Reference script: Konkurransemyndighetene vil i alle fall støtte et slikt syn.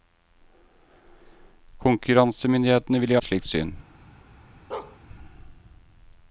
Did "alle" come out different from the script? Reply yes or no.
yes